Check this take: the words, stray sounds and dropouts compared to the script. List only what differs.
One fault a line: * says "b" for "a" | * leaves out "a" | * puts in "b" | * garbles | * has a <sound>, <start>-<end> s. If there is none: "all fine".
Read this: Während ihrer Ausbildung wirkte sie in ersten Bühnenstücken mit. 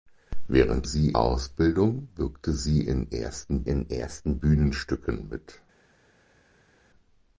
* says "sie" for "ihrer"
* puts in "in ersten"